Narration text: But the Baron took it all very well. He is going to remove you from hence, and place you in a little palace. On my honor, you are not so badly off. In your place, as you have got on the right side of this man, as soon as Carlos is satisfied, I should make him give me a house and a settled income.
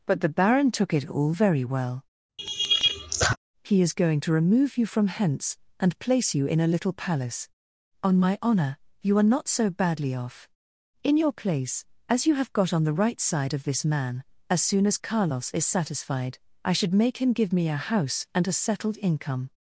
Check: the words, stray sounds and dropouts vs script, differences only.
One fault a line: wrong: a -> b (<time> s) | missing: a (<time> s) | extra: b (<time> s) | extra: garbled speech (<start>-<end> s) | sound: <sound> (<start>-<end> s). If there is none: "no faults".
sound: laugh (2.4-3.4 s)